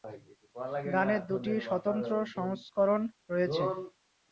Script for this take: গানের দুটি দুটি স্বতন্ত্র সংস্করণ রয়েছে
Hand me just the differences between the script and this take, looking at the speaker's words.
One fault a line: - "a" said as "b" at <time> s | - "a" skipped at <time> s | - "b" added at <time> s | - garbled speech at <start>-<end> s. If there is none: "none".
- "দুটি" skipped at 1.5 s